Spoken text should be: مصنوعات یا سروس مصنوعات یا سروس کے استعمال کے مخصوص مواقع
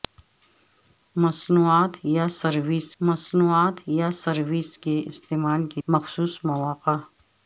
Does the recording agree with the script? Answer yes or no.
yes